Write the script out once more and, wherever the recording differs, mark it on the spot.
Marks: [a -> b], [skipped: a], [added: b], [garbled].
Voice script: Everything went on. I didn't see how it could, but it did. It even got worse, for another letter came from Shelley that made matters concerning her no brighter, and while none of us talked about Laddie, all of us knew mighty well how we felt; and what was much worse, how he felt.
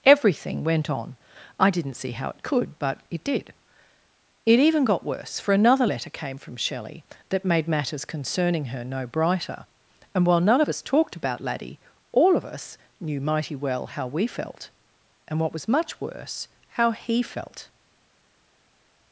Everything went on. I didn't see how it could, but it did. It even got worse, for another letter came from Shelley that made matters concerning her no brighter, and while none of us talked about Laddie, all of us knew mighty well how we felt; and what was much worse, how he felt.